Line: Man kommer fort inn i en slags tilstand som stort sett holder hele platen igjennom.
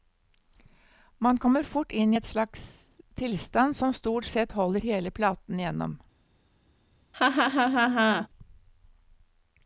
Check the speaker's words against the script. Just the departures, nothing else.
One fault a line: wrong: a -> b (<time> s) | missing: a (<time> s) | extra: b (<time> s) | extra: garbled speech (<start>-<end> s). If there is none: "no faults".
no faults